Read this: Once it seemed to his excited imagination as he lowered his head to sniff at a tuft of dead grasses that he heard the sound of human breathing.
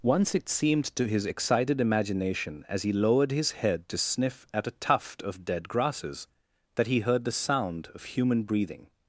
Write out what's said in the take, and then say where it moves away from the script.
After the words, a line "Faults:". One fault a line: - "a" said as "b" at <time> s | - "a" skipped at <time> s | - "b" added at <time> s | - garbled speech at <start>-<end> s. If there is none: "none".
Once it seemed to his excited imagination as he lowered his head to sniff at a tuft of dead grasses that he heard the sound of human breathing.
Faults:
none